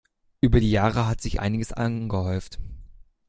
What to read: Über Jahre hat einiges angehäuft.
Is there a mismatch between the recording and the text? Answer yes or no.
yes